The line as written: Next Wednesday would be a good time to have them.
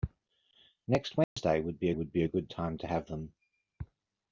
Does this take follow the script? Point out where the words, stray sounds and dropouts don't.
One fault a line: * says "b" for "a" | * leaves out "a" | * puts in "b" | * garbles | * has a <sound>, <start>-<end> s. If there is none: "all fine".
* has a dropout, 1.2-1.4 s
* puts in "would be"